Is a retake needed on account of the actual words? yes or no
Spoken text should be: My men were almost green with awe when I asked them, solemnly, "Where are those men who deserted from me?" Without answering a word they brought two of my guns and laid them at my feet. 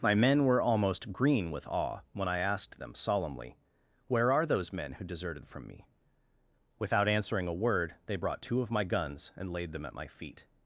no